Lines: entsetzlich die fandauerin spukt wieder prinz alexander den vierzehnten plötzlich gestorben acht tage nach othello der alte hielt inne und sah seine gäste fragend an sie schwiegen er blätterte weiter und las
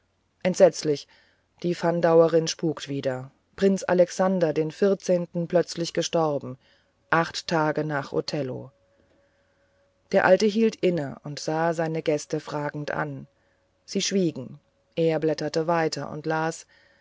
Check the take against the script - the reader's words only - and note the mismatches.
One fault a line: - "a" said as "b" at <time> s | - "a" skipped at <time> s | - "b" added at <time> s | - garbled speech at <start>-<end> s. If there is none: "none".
none